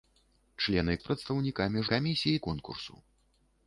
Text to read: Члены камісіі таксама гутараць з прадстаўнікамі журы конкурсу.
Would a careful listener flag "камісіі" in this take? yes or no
yes